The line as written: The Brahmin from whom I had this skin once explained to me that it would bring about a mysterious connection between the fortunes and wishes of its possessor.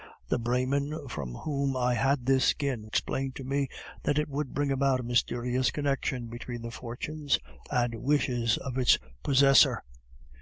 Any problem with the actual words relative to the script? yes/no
yes